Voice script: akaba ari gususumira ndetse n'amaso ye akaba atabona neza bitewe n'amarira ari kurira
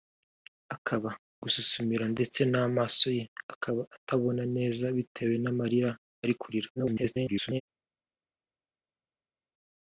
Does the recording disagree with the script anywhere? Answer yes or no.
yes